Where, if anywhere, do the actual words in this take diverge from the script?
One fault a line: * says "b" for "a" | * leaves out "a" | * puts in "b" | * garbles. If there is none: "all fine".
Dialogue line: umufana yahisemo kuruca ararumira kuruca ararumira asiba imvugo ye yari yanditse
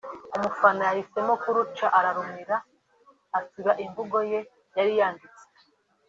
* leaves out "kuruca ararumira"